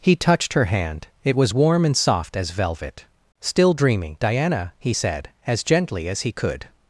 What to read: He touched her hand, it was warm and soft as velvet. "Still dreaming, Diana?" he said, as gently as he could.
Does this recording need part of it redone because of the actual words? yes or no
no